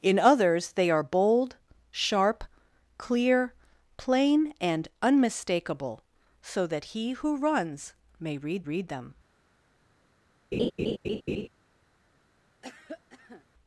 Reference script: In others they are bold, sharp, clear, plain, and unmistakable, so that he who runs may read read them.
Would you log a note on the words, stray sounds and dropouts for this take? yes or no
yes